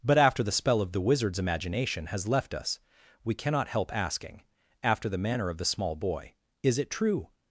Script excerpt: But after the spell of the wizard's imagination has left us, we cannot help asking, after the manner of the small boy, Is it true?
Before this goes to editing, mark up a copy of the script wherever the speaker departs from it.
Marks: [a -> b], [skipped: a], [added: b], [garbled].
But after the spell of the wizard's imagination has left us, we cannot help asking, after the manner of the small boy, Is it true?